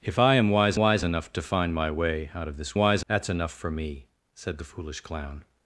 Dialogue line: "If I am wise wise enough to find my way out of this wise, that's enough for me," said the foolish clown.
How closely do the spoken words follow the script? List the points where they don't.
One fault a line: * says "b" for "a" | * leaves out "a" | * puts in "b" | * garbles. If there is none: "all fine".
all fine